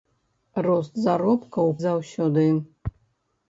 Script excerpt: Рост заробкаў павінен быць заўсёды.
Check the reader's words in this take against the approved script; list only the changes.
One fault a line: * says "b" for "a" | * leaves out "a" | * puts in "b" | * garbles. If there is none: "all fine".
* leaves out "павінен быць"